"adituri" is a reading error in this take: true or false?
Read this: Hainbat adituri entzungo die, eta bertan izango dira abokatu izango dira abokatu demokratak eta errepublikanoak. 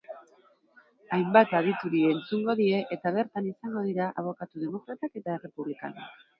false